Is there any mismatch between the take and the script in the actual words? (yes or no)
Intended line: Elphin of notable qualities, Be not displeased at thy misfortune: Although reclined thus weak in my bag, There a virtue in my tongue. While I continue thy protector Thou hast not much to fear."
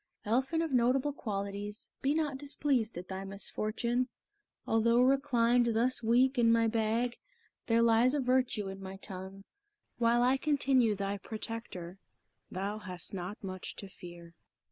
yes